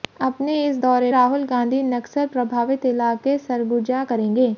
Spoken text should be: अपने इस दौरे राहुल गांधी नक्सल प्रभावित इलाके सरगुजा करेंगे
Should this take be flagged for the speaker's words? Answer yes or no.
no